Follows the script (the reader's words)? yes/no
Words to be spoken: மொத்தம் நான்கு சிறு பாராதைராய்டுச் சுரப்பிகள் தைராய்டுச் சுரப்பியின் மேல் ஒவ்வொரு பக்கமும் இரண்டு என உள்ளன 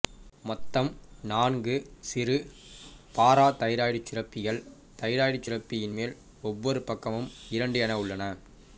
yes